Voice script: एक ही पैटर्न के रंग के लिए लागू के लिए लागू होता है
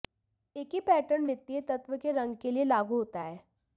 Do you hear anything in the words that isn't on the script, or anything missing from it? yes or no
yes